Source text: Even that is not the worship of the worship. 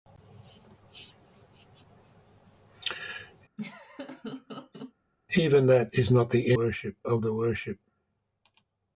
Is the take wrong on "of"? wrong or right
right